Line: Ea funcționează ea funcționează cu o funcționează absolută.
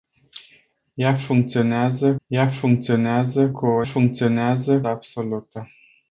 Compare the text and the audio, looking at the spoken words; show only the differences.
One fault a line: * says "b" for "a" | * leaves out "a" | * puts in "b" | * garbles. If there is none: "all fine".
all fine